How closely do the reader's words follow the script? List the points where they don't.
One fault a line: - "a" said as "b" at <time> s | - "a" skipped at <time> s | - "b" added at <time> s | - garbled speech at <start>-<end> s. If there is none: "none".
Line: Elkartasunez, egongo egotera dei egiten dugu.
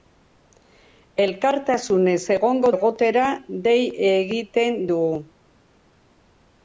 none